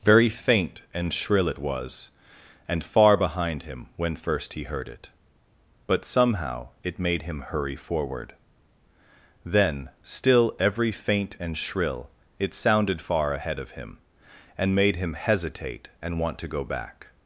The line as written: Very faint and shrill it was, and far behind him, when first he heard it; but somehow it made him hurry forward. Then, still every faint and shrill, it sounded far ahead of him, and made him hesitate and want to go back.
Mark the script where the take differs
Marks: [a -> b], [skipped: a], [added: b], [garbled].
Very faint and shrill it was, and far behind him, when first he heard it; but somehow it made him hurry forward. Then, still every faint and shrill, it sounded far ahead of him, and made him hesitate and want to go back.